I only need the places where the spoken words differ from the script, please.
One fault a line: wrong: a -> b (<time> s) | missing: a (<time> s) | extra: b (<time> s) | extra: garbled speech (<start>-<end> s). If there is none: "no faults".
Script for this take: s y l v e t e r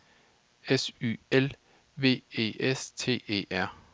extra: s (2.6 s)